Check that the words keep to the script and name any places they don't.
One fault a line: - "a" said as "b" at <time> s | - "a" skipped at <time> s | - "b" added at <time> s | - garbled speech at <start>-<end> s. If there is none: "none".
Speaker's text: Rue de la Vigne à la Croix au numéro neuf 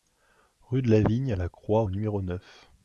none